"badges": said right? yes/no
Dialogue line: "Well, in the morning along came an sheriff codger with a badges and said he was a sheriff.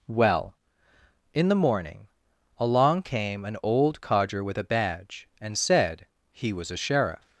no